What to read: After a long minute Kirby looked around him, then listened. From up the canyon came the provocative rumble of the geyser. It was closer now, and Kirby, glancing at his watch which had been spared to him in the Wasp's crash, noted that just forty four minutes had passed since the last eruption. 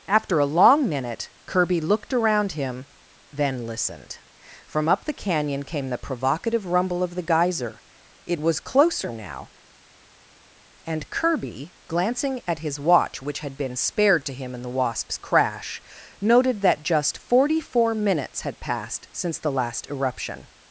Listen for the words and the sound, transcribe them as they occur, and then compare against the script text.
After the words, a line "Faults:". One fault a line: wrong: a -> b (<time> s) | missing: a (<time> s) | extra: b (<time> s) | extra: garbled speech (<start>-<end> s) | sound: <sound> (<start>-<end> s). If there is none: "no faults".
After a long minute Kirby looked around him, then listened. From up the canyon came the provocative rumble of the geyser. It was closer now, and Kirby, glancing at his watch which had been spared to him in the Wasp's crash, noted that just forty four minutes had passed since the last eruption.
Faults:
no faults